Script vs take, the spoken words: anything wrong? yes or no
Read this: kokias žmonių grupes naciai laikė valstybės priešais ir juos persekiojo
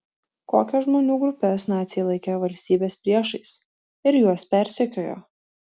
no